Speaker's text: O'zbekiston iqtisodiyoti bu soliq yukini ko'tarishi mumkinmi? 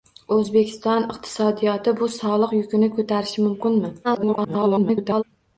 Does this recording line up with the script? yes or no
no